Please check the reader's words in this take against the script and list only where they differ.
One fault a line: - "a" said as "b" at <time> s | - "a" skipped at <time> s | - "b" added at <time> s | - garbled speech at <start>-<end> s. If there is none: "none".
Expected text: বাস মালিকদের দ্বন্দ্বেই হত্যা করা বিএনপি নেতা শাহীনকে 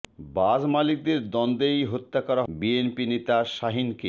none